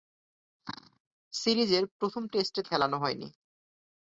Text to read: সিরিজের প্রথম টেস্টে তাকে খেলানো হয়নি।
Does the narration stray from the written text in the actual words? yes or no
yes